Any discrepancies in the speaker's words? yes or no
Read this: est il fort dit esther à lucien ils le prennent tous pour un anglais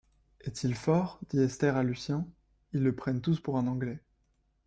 no